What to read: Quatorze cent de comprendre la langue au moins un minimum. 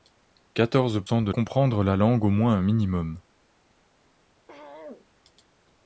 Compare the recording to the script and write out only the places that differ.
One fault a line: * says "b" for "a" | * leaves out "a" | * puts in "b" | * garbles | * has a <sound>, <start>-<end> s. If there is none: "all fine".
* has a throat clearing, 4.5-5.1 s